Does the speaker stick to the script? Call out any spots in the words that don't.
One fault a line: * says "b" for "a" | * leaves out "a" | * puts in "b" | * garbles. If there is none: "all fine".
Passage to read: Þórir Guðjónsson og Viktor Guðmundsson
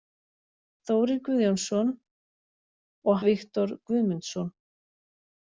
all fine